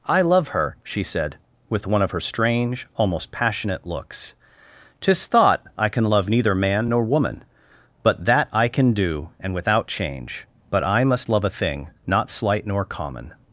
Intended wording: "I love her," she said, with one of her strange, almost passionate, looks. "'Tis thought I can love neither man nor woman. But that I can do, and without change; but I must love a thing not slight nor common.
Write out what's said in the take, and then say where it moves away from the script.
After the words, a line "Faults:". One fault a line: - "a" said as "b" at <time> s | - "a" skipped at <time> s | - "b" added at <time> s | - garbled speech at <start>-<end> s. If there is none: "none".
"I love her," she said, with one of her strange, almost passionate, looks. "'Tis thought I can love neither man nor woman. But that I can do, and without change; but I must love a thing not slight nor common.
Faults:
none